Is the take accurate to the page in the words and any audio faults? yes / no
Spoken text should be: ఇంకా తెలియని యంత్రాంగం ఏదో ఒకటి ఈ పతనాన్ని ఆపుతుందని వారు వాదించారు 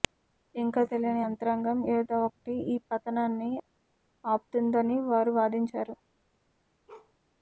no